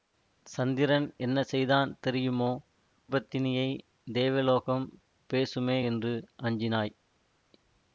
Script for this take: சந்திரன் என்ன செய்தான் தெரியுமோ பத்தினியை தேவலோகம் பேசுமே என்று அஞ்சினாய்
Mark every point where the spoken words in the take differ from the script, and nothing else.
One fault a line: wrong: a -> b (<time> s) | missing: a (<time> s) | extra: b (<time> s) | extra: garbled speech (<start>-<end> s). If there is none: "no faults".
no faults